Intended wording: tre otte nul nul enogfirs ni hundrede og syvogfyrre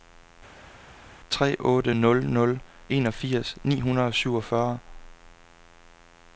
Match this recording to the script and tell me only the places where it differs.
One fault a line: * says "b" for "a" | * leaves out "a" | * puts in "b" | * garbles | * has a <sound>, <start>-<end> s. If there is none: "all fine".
all fine